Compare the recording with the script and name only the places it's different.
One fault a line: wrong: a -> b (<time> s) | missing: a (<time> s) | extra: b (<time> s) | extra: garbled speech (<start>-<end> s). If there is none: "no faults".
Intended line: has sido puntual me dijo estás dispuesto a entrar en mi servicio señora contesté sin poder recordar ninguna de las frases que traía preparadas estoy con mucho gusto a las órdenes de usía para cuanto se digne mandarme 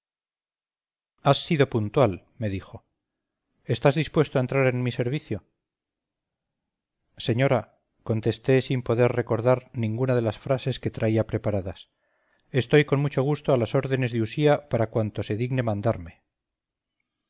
no faults